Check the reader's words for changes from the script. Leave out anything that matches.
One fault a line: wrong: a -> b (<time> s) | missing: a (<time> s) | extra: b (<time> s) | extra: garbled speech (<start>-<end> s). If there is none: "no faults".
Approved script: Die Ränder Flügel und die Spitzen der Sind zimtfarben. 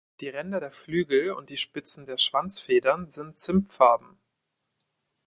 extra: der (0.6 s)
extra: Schwanzfedern (2.2 s)